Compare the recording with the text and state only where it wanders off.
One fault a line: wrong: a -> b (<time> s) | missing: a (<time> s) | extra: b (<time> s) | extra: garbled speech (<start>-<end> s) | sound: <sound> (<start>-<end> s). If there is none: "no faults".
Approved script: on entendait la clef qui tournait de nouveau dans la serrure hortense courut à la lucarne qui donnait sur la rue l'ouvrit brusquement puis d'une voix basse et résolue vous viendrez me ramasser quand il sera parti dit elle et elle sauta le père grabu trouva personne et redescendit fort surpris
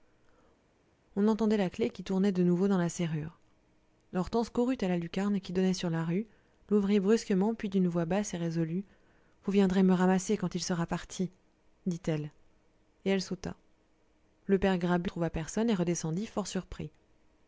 no faults